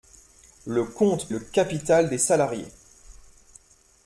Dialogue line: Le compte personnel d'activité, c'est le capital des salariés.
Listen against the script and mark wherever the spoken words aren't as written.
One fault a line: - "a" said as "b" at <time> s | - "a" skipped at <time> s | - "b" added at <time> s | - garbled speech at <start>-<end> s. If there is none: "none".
- "personnel d'activité c'est" skipped at 1.3 s